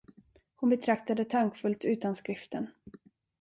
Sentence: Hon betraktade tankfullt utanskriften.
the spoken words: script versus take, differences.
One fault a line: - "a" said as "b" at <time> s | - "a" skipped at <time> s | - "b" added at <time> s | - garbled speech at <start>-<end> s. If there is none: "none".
none